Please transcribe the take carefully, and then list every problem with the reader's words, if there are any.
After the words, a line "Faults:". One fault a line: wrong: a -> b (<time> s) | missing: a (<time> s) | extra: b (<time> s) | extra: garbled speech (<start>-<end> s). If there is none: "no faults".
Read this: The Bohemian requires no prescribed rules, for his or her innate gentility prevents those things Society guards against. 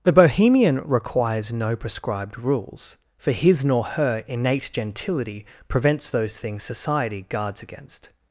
The Bohemian requires no prescribed rules, for his nor her innate gentility prevents those things Society guards against.
Faults:
wrong: or -> nor (3.6 s)